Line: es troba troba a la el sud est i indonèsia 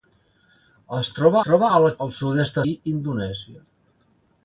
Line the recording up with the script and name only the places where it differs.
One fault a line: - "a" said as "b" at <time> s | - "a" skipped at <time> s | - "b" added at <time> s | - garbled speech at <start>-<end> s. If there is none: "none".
none